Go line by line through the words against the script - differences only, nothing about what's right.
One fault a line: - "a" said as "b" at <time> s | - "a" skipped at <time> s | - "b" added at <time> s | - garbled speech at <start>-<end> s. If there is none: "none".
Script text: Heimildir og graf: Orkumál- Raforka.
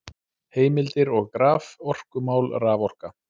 none